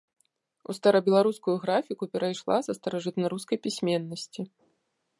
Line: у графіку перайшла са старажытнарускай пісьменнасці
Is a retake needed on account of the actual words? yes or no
yes